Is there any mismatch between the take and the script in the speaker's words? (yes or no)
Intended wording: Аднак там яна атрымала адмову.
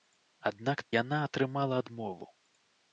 yes